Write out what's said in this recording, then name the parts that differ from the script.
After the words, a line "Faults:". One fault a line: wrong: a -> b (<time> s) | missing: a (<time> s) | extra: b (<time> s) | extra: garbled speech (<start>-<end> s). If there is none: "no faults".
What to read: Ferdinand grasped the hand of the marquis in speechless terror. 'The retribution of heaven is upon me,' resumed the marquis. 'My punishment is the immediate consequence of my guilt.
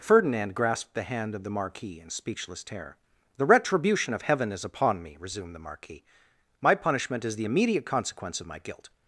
Ferdinand grasped the hand of the marquis in speechless terror. 'The retribution of heaven is upon me,' resumed the marquis. 'My punishment is the immediate consequence of my guilt.
Faults:
no faults